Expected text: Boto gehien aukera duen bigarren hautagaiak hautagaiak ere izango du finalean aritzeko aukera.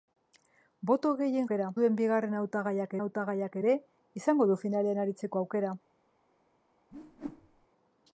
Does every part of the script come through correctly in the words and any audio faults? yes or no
no